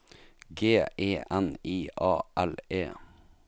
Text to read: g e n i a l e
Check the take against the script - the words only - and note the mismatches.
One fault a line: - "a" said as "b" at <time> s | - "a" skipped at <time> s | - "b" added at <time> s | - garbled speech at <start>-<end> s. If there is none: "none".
none